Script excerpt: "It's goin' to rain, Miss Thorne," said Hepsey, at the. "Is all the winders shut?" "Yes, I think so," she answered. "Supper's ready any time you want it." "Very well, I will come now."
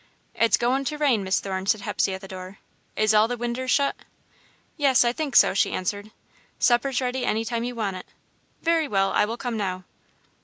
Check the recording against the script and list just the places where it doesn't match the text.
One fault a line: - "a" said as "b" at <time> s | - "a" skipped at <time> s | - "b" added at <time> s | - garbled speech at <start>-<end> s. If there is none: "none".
- "door" added at 2.3 s